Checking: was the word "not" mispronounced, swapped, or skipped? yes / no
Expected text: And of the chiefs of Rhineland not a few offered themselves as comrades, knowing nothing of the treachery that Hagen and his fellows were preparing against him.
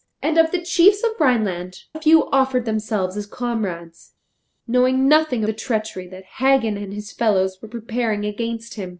yes